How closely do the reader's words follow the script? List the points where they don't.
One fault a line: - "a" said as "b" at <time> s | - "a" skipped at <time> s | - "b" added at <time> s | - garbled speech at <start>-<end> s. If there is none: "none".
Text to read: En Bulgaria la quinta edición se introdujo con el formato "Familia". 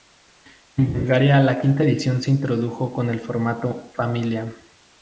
none